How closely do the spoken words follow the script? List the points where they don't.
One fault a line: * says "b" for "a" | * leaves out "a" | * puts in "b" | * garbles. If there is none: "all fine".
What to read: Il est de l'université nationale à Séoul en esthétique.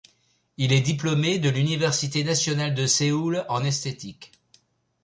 * puts in "diplômé"
* says "de" for "à"